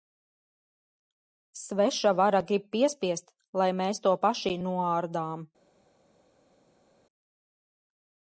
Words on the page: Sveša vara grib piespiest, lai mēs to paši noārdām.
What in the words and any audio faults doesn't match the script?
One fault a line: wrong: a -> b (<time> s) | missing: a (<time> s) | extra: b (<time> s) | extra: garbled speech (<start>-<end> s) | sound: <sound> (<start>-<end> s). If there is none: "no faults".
no faults